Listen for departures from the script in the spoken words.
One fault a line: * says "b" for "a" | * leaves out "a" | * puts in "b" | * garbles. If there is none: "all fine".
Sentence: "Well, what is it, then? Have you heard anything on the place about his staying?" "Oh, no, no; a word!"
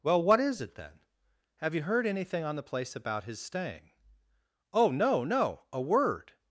all fine